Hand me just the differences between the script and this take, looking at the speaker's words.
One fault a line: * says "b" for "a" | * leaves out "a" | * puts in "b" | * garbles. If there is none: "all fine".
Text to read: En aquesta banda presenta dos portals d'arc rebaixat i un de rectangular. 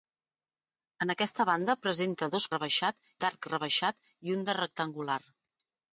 * says "rebaixat" for "portals"